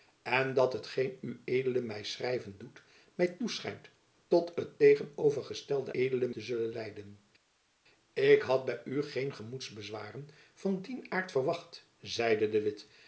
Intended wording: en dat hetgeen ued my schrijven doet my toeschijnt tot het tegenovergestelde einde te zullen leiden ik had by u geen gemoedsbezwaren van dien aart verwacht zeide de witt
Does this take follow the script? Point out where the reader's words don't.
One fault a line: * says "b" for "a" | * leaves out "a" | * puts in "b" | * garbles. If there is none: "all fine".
* says "ued" for "einde"